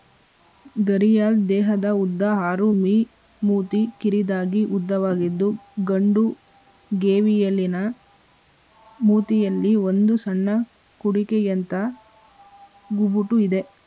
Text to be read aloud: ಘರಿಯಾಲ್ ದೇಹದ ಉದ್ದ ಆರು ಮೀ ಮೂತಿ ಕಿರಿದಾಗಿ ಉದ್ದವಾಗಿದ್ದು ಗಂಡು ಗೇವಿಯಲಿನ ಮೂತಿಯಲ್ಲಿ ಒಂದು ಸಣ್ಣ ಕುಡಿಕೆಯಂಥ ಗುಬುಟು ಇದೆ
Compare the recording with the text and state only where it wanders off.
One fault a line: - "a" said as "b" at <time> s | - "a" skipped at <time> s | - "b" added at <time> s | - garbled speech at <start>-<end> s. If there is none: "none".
none